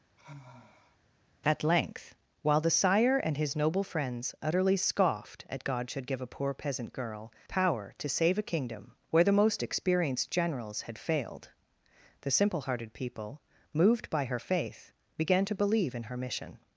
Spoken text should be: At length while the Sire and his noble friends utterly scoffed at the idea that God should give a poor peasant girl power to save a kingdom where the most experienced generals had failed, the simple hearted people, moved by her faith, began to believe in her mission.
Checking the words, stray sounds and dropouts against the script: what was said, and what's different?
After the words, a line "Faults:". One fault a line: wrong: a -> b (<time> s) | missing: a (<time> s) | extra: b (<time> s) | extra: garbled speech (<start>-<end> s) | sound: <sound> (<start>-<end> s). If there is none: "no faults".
At length while the Sire and his noble friends utterly scoffed at God should give a poor peasant girl power to save a kingdom where the most experienced generals had failed, the simple hearted people, moved by her faith, began to believe in her mission.
Faults:
sound: sigh (0.2-1.0 s)
missing: the idea that (5.6 s)